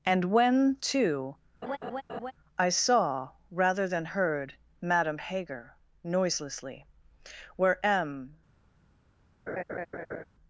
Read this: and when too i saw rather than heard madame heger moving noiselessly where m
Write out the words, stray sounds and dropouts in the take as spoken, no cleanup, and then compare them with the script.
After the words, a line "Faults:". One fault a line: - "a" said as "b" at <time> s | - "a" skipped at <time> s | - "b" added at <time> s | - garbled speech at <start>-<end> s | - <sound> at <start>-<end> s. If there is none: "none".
and when too i saw rather than heard madame heger noiselessly where m
Faults:
- laugh at 1.6-2.3 s
- "moving" skipped at 5.8 s
- laugh at 9.5-10.2 s